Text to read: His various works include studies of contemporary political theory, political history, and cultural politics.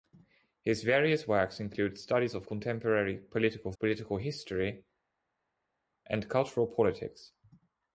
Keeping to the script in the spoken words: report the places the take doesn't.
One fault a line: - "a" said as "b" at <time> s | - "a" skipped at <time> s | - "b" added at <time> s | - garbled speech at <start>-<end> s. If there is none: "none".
- "theory" skipped at 3.7 s